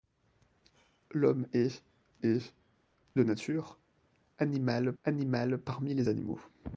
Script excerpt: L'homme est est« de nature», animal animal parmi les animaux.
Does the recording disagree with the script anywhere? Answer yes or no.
no